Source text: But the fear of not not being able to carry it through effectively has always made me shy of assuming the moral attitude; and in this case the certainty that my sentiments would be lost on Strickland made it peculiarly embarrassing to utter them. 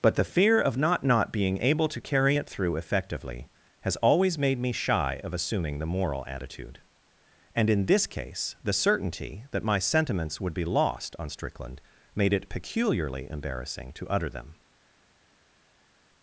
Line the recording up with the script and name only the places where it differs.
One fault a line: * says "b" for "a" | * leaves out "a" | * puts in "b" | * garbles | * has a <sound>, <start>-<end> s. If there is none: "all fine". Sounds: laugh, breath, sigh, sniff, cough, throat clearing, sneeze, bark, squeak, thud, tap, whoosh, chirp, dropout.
all fine